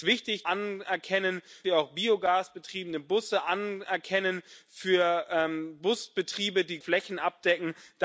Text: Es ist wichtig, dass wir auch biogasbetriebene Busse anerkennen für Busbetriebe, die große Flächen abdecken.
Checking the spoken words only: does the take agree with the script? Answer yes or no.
no